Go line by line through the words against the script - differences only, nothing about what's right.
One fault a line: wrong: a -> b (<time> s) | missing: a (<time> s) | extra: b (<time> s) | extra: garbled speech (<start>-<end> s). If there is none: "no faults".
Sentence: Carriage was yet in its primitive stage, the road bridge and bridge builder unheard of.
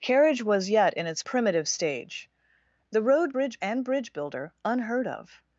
no faults